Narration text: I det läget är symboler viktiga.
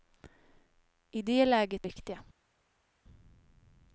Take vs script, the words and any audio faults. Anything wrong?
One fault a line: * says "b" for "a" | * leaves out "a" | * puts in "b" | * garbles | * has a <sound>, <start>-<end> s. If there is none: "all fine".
* leaves out "är symboler"